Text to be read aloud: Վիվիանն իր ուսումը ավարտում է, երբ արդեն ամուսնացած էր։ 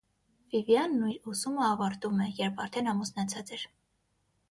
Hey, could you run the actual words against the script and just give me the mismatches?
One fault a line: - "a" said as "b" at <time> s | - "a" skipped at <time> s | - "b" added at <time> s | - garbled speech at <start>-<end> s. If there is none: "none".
none